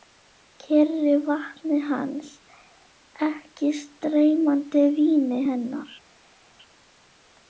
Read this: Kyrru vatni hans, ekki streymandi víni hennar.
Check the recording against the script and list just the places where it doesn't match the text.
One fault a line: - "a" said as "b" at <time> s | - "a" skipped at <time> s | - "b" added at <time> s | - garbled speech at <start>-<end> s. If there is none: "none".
none